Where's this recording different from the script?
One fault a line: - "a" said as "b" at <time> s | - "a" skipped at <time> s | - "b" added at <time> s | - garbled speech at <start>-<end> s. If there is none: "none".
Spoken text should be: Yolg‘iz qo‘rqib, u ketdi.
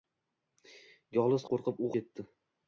none